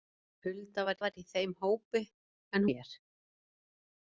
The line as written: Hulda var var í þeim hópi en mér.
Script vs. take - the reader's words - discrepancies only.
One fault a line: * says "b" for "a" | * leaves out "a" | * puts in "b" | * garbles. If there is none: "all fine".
all fine